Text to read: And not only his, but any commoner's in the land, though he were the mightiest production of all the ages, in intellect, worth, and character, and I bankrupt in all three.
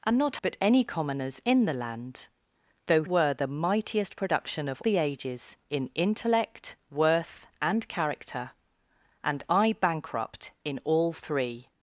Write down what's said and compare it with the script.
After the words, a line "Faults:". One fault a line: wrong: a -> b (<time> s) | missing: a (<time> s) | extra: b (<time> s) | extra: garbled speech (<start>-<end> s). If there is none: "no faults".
And not but any commoner's in the land, though were the mightiest production of the ages, in intellect, worth, and character, and I bankrupt in all three.
Faults:
missing: only his (0.4 s)
missing: he (3.0 s)
missing: all (4.8 s)